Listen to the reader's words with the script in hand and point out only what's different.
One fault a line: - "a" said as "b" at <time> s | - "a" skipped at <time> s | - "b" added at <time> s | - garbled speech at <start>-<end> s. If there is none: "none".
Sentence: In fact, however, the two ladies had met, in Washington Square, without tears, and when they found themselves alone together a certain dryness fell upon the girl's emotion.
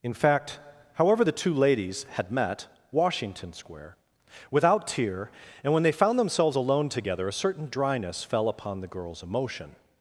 - "in" skipped at 2.7 s
- "tears" said as "tear" at 4.9 s